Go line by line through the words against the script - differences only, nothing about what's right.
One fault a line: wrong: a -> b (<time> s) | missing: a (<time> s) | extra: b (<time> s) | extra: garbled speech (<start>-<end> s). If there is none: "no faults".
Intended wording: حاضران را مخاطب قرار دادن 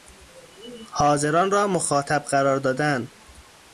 no faults